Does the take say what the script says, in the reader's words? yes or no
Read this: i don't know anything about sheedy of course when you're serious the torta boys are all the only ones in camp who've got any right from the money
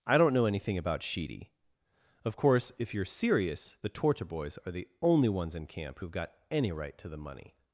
no